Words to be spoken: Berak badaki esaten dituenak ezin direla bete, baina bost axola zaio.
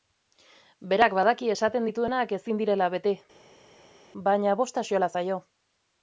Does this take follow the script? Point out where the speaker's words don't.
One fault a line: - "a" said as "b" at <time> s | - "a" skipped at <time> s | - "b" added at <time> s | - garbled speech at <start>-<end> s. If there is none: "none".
none